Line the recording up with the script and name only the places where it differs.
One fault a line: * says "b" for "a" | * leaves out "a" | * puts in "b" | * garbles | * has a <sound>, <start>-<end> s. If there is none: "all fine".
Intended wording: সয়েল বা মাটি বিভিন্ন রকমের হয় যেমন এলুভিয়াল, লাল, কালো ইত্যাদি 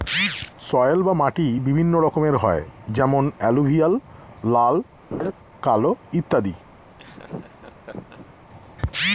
* has a laugh, 5.1-5.3 s
* has a laugh, 7.0-8.4 s